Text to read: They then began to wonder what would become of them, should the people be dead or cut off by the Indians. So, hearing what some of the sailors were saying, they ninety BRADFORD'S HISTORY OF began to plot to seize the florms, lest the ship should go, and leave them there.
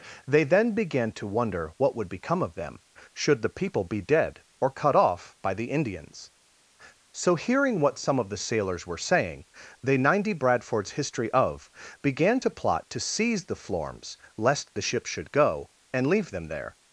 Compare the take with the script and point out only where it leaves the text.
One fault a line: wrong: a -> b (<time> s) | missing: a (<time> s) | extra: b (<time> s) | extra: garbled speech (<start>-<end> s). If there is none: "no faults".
no faults